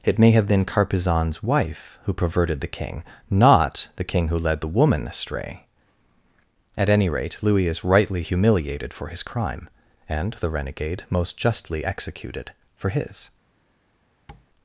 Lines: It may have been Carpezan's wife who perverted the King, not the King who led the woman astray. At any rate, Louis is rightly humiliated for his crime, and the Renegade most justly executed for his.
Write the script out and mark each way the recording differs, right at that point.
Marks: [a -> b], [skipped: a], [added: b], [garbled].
It may have been Carpezan's wife who perverted the King, not the King who led the woman astray. At any rate, Louis is rightly humiliated for his crime, and the Renegade most justly executed for his.